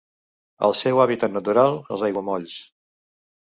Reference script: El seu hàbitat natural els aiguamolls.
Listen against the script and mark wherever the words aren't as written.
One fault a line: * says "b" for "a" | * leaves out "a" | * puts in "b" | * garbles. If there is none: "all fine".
all fine